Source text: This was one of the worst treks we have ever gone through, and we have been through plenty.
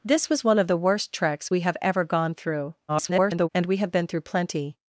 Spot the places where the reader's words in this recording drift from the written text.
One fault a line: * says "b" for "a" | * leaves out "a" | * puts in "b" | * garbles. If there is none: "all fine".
* garbles